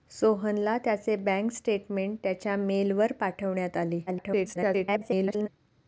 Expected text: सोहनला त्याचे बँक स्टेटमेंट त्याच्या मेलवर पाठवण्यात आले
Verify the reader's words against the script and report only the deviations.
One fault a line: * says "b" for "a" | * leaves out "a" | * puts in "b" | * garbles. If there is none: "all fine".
* garbles